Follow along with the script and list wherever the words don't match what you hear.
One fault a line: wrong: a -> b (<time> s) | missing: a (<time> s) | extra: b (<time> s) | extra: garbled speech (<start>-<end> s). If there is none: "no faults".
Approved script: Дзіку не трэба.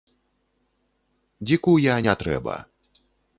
extra: я (1.8 s)